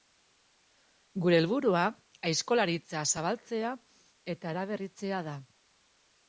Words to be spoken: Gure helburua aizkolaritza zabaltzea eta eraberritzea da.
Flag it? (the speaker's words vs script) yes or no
no